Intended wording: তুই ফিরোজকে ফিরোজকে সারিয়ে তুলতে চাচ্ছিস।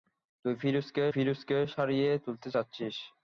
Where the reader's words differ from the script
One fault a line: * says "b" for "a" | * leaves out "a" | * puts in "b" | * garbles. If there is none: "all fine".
all fine